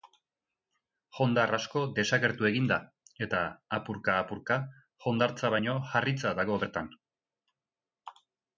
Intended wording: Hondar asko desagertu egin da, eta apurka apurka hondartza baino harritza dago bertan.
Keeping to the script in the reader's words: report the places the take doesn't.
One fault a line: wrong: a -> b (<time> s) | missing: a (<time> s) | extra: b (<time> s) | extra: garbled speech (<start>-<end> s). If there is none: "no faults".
no faults